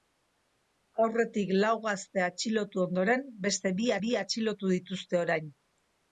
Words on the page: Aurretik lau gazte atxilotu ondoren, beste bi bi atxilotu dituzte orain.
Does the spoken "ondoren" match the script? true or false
true